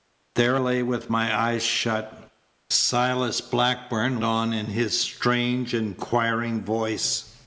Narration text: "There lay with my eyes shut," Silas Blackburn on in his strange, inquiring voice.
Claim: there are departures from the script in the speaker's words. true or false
false